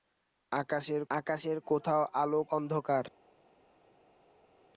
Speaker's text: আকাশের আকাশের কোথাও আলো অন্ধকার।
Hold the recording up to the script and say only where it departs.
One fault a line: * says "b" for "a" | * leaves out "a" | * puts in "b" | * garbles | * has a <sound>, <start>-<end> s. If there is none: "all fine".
all fine